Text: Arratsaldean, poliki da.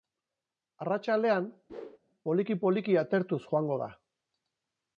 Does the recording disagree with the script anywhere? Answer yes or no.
yes